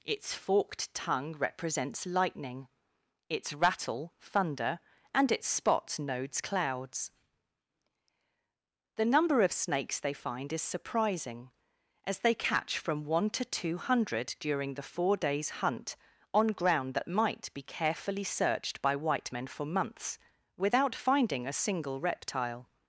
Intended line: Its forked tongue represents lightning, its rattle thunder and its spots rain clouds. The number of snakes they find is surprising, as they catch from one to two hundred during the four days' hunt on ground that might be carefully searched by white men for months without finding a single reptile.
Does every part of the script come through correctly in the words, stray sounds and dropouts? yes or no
no